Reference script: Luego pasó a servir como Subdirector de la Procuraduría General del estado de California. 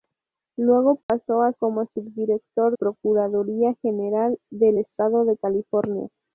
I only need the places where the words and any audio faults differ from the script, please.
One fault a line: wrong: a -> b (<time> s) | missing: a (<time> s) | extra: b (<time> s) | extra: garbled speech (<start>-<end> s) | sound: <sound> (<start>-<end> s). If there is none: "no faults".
sound: dropout (1.0-1.1 s)
missing: servir (1.5 s)
missing: de la (2.8 s)